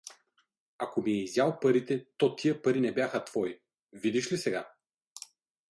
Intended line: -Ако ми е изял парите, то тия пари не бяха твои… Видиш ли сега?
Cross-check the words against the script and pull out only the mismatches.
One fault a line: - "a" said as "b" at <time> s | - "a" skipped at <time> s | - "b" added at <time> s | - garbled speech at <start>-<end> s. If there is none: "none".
none